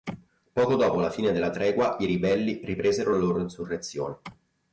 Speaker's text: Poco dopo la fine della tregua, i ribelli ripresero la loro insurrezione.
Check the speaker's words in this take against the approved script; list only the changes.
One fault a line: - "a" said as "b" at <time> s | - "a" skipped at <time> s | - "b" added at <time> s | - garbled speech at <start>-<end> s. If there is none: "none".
none